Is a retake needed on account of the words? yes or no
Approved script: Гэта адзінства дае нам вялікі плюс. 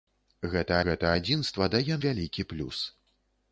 yes